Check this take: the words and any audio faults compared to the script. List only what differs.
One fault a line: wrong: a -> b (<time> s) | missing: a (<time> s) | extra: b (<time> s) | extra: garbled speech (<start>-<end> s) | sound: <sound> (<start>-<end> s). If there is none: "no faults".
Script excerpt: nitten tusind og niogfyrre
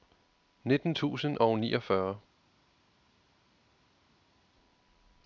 no faults